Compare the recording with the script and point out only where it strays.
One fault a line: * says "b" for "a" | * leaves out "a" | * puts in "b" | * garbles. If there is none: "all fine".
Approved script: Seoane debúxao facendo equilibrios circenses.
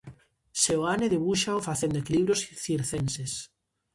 all fine